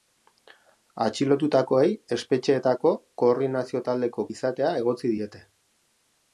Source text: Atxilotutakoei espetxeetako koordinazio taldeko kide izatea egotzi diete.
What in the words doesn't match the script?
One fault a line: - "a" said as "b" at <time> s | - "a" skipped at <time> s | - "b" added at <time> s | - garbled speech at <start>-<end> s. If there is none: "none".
- "kide" skipped at 4.3 s